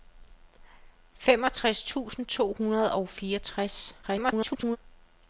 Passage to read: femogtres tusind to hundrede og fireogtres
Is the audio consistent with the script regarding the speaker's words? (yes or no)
no